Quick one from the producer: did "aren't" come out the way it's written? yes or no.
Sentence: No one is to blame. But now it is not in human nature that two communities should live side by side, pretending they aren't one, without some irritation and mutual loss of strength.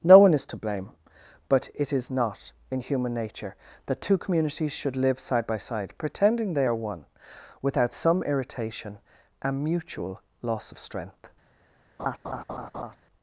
no